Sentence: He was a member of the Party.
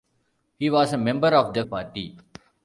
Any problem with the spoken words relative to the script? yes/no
no